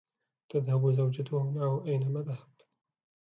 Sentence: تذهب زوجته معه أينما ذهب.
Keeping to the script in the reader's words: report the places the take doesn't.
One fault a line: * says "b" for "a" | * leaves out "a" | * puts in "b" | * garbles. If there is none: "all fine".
all fine